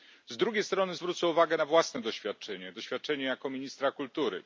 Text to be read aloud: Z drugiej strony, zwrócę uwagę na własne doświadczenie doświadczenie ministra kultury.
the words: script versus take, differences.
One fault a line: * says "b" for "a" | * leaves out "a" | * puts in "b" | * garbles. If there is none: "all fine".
* puts in "jako"